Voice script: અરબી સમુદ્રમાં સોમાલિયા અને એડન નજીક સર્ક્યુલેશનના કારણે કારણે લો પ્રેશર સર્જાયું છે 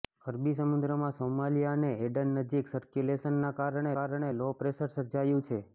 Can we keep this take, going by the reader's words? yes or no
yes